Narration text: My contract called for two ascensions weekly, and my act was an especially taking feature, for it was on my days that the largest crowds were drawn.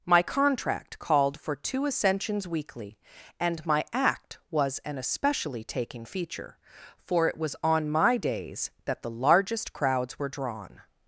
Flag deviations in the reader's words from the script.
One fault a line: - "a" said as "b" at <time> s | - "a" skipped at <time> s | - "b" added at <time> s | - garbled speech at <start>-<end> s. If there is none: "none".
none